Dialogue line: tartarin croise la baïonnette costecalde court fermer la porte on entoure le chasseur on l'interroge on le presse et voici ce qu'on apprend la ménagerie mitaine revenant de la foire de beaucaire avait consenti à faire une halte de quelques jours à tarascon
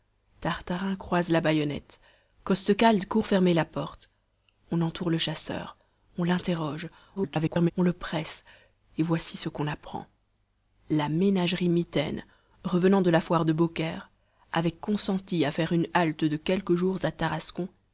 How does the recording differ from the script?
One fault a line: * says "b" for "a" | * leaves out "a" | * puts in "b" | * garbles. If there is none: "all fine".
* garbles